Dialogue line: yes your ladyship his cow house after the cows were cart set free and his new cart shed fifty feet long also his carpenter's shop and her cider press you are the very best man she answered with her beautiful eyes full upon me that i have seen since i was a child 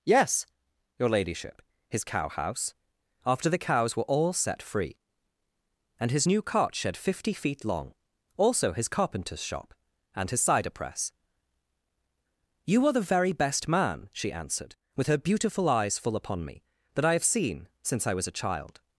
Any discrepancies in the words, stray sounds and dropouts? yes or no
yes